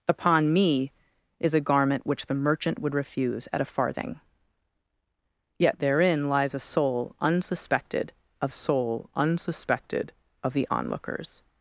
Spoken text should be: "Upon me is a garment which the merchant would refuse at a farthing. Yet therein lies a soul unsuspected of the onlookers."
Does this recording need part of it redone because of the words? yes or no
yes